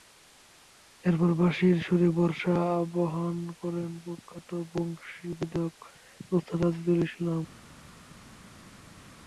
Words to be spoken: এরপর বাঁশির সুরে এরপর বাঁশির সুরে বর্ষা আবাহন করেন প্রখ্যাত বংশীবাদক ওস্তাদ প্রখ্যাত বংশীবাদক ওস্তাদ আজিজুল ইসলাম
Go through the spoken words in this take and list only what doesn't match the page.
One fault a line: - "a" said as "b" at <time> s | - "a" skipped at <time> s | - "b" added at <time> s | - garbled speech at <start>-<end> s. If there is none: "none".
- "এরপর বাঁশির সুরে" skipped at 2.1 s
- "প্রখ্যাত বংশীবাদক ওস্তাদ" skipped at 6.6 s